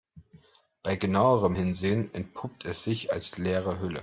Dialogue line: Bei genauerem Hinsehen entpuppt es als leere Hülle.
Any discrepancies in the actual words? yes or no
yes